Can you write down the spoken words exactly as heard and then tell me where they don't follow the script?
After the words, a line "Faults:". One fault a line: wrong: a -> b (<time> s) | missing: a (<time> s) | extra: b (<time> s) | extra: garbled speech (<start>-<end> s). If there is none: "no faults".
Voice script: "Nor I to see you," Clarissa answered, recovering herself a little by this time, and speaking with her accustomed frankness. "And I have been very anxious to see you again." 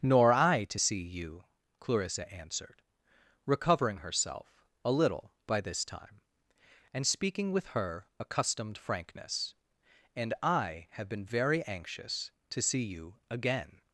"Nor I to see you," Clarissa answered, recovering herself a little by this time, and speaking with her accustomed frankness. "And I have been very anxious to see you again."
Faults:
no faults